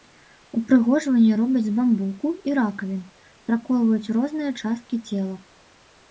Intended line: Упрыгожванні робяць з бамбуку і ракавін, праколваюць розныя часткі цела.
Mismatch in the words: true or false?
false